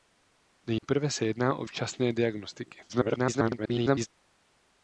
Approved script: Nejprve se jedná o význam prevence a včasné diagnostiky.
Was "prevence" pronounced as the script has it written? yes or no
no